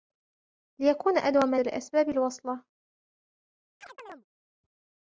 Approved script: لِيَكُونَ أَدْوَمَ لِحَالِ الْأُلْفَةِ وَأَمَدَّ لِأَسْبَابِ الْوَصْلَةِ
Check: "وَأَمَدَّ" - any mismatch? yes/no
yes